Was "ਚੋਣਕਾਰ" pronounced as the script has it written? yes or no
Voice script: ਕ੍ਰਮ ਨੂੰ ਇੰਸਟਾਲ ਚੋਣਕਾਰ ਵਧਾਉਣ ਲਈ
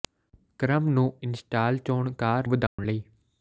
yes